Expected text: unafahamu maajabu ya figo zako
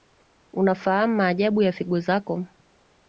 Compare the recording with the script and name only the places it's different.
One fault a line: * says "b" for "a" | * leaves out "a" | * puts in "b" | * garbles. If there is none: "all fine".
all fine